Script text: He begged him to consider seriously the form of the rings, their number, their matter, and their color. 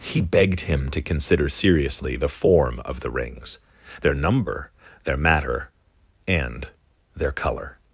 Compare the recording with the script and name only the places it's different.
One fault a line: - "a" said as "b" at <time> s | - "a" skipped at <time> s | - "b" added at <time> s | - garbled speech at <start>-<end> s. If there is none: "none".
none